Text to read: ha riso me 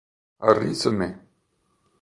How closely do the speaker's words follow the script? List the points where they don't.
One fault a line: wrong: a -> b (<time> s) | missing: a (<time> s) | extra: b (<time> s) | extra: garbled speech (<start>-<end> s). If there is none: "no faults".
no faults